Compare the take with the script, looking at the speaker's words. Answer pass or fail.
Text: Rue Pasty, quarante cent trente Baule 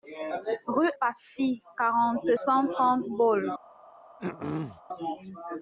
pass